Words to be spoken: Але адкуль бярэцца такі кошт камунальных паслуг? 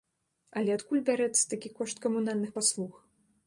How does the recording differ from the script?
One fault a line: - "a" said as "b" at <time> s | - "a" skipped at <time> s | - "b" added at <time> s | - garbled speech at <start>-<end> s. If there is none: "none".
none